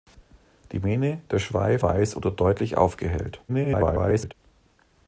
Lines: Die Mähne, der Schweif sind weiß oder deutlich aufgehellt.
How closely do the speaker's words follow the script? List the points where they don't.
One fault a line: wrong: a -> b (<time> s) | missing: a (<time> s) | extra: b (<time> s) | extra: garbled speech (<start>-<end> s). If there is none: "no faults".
missing: sind (1.8 s)
extra: garbled speech (3.5-4.3 s)